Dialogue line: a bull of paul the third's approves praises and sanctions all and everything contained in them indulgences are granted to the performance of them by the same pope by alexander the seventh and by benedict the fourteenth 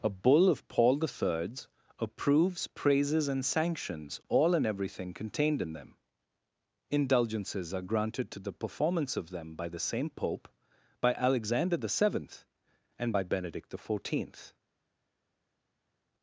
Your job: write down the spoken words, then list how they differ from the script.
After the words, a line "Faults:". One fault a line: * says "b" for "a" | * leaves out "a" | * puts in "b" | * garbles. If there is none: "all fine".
a bull of paul the third's approves praises and sanctions all and everything contained in them indulgences are granted to the performance of them by the same pope by alexander the seventh and by benedict the fourteenth
Faults:
all fine